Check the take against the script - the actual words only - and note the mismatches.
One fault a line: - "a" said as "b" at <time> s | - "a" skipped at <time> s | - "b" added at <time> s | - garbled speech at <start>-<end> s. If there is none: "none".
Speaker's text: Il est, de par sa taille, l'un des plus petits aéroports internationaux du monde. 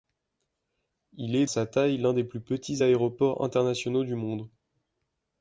- "de par" skipped at 1.4 s